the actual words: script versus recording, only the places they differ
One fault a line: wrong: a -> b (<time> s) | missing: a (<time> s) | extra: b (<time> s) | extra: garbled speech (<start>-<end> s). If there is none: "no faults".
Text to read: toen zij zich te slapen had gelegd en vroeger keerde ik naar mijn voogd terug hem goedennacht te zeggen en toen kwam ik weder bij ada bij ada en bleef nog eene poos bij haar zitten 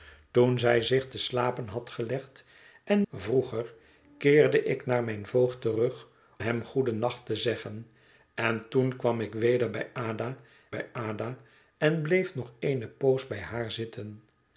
no faults